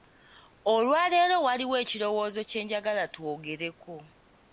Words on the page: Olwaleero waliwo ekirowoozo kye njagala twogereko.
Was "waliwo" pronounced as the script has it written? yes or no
yes